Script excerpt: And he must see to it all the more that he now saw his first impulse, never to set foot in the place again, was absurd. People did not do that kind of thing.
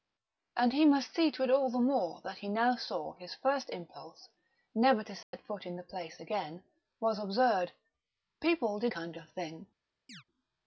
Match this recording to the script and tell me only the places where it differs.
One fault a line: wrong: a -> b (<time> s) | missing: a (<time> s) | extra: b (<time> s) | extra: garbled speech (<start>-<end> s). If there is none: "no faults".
missing: not do that (8.9 s)